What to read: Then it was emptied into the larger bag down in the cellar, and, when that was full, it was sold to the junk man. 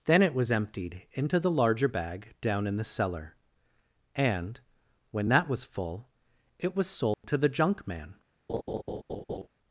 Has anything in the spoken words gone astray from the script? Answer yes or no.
no